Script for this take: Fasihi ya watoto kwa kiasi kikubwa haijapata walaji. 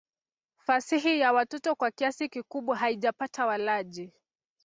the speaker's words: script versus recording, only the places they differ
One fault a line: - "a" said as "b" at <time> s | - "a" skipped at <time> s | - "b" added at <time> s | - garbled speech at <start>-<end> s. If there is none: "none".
none